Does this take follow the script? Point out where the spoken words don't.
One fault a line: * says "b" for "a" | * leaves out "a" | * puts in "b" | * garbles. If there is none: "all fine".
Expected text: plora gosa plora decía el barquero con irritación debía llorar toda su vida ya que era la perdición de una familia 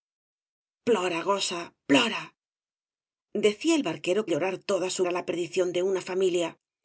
* leaves out "con irritación debía"
* leaves out "vida ya que"